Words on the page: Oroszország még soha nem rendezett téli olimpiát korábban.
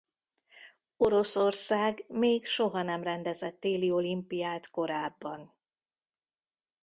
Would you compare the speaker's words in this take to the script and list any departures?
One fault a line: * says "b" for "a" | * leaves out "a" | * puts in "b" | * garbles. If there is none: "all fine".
all fine